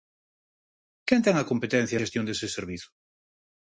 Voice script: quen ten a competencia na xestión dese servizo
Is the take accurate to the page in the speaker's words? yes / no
no